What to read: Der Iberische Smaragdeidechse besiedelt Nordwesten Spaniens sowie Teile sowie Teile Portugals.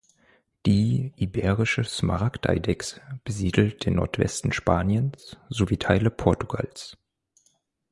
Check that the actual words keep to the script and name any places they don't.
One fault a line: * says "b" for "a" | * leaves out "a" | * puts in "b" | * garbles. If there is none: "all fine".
* says "Die" for "Der"
* puts in "den"
* leaves out "sowie Teile"